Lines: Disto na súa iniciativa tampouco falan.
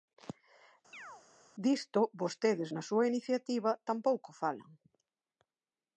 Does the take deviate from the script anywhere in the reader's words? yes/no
yes